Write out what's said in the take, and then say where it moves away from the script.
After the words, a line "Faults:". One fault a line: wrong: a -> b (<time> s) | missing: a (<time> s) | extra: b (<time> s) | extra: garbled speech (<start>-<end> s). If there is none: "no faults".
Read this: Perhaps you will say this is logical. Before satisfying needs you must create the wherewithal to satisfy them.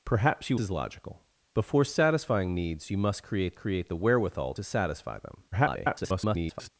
Perhaps you is logical. Before satisfying needs you must create create the wherewithal to satisfy them. [garbled]
Faults:
missing: will say this (0.6 s)
extra: create (3.5 s)
extra: garbled speech (5.5-6.7 s)